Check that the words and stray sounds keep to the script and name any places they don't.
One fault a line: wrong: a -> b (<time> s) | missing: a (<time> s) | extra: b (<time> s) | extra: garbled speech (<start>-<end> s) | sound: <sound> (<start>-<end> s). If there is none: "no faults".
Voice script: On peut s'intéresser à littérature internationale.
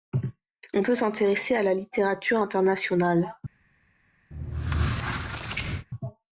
extra: la (1.6 s)
sound: squeak (4.3-5.9 s)